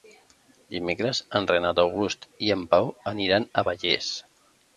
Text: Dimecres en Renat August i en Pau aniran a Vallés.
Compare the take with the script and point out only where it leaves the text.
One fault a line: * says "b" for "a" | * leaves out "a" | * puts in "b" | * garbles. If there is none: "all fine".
all fine